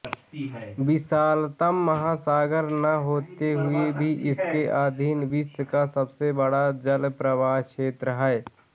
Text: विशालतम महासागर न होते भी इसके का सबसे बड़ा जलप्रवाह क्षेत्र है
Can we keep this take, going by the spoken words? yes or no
no